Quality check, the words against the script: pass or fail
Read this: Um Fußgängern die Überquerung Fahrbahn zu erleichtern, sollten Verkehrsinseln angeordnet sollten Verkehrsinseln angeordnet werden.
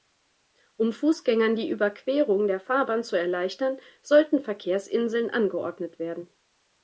fail